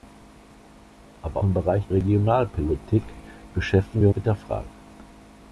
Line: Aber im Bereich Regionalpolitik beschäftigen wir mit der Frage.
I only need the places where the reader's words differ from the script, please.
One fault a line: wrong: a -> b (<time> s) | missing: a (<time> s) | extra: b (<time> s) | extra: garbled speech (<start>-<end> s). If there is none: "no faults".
no faults